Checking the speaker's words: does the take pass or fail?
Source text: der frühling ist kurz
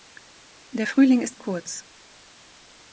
pass